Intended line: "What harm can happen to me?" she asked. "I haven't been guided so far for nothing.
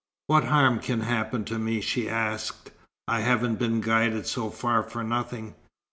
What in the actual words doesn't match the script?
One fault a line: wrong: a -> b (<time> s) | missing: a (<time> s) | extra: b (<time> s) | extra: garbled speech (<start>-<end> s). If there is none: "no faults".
no faults